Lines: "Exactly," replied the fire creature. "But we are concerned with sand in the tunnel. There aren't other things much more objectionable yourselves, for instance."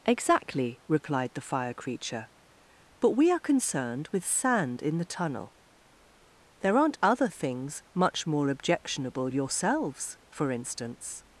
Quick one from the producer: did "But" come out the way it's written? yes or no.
yes